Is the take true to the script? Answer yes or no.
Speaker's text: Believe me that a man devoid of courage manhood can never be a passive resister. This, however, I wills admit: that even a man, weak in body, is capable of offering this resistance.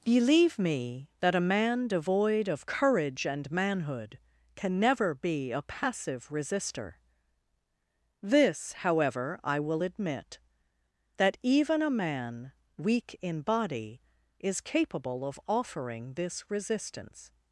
no